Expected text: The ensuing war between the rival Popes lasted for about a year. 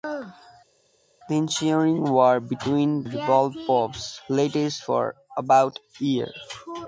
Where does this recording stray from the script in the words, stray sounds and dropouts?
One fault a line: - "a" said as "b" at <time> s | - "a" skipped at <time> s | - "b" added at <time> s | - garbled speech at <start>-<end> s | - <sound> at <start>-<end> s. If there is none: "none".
- "the" skipped at 3.0 s